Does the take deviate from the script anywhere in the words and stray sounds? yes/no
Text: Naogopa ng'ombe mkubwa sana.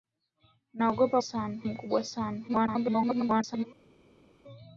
yes